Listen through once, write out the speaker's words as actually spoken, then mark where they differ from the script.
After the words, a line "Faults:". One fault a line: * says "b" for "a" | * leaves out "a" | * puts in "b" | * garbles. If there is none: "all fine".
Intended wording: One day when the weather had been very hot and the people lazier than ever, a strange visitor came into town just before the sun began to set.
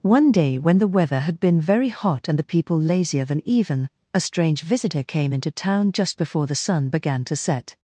One day when the weather had been very hot and the people lazier than even, a strange visitor came into town just before the sun began to set.
Faults:
* says "even" for "ever"